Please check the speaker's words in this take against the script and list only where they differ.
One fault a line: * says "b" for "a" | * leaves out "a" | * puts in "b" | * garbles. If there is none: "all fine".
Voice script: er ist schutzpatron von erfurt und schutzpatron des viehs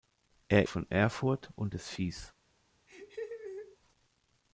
* leaves out "ist schutzpatron"
* leaves out "schutzpatron"